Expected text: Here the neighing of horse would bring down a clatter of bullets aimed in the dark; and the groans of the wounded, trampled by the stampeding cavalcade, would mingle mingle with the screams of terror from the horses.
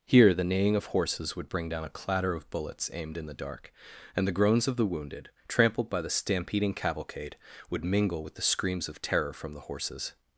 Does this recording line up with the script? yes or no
no